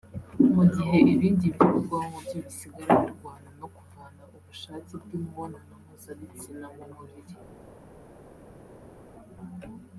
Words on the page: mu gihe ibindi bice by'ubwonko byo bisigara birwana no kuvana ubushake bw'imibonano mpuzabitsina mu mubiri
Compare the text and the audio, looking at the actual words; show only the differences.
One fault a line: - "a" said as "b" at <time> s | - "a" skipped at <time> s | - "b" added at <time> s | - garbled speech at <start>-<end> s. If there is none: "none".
- "bice" skipped at 1.4 s